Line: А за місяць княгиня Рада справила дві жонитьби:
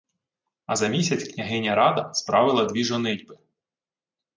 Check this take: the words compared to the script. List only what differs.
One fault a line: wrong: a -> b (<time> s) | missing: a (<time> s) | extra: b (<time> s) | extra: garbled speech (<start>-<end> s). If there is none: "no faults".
no faults